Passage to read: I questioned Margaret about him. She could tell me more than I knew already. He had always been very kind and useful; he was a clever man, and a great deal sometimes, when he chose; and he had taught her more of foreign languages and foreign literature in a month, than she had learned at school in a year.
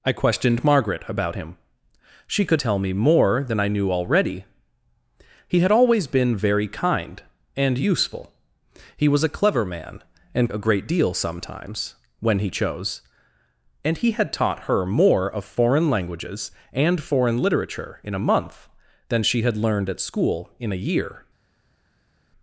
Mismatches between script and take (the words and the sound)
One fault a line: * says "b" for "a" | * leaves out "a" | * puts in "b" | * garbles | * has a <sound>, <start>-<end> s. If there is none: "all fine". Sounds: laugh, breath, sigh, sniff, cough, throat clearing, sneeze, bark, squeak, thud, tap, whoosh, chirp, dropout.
all fine